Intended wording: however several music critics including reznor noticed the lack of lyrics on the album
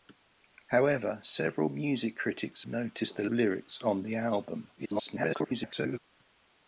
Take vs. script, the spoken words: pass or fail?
fail